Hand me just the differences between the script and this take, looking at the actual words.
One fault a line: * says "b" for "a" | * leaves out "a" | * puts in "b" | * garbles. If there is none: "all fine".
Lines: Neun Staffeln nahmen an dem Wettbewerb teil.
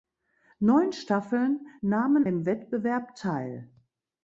* leaves out "an"